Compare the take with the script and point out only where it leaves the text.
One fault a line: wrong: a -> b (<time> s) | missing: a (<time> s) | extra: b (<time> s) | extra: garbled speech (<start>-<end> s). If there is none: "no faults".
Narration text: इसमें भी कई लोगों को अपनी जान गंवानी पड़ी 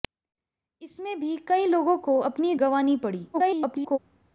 missing: जान (2.5 s)
extra: garbled speech (3.3-4.0 s)